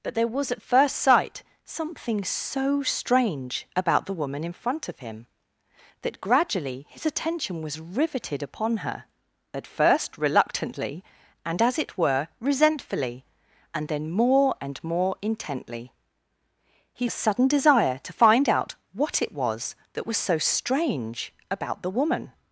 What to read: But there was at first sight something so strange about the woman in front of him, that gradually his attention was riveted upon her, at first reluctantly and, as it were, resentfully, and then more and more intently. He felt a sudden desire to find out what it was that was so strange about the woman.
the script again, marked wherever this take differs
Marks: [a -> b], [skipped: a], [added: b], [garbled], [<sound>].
But there was at first sight something so strange about the woman in front of him, that gradually his attention was riveted upon her, at first reluctantly and, as it were, resentfully, and then more and more intently. He [skipped: felt] a sudden desire to find out what it was that was so strange about the woman.